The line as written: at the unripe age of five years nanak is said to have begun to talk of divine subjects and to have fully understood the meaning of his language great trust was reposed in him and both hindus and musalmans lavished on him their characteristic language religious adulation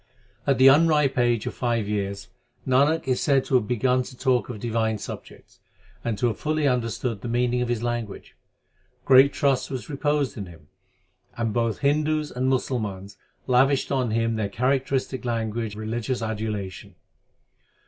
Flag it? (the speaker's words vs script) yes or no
no